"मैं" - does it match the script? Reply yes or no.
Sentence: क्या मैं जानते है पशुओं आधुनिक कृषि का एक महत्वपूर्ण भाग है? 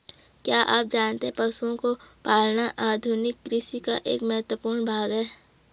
no